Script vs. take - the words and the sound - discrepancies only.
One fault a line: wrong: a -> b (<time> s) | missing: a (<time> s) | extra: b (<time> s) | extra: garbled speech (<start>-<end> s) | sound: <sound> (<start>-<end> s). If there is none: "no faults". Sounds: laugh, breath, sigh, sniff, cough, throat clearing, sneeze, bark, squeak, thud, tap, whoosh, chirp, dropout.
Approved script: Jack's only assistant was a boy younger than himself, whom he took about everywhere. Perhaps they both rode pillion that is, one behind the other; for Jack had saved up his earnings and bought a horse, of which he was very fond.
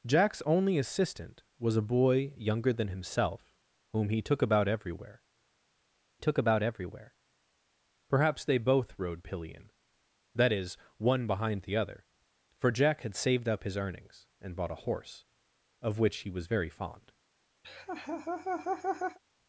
extra: took about everywhere (6.2 s)
sound: laugh (17.6-19.2 s)